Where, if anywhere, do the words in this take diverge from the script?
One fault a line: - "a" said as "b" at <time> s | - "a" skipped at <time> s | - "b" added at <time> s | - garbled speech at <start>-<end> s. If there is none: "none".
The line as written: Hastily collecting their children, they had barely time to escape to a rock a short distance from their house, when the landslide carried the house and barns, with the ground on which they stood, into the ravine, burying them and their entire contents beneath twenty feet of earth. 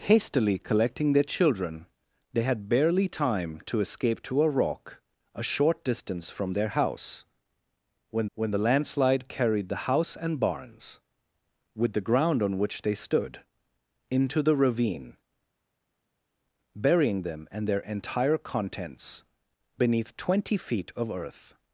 - "when" added at 8.3 s